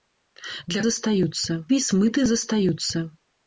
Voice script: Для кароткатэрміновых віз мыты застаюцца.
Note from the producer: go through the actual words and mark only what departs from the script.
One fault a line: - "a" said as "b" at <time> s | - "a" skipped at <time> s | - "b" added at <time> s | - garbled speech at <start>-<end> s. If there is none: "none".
- "кароткатэрміновых" said as "застаюцца" at 0.9 s